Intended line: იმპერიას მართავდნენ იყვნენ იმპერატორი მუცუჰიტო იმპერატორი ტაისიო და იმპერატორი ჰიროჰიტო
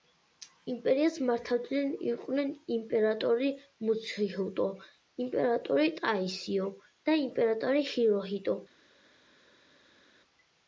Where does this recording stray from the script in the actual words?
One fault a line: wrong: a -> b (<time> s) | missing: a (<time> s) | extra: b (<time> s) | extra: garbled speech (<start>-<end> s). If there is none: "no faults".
no faults